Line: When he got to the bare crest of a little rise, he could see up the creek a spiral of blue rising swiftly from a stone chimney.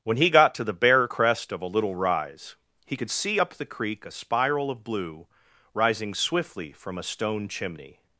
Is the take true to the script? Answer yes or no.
yes